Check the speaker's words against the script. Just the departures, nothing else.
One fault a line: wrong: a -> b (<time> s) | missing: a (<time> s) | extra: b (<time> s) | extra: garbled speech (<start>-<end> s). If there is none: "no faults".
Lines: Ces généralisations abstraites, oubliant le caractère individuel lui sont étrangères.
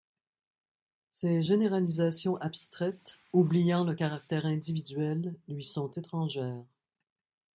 no faults